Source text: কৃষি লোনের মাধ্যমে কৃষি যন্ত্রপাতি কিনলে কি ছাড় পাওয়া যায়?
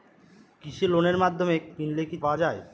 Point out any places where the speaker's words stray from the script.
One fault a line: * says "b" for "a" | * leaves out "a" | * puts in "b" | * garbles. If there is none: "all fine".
* leaves out "কৃষি যন্ত্রপাতি"
* leaves out "ছাড়"